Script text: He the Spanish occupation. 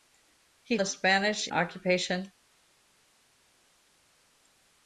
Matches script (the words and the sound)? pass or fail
pass